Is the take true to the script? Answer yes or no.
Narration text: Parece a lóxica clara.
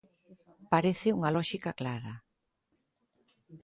no